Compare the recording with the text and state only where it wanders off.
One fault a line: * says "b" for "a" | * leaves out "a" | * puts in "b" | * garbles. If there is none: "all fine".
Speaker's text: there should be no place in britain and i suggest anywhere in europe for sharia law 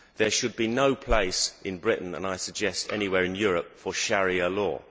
all fine